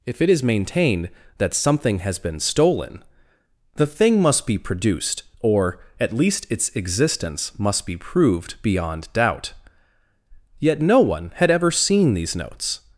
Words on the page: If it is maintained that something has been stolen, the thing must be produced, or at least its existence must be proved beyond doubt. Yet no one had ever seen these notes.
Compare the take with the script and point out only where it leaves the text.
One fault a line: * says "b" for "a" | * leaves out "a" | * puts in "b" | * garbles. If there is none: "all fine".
all fine